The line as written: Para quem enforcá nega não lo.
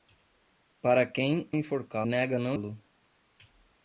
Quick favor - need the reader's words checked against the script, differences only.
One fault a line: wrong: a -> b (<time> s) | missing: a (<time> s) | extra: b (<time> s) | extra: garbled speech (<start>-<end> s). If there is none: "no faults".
no faults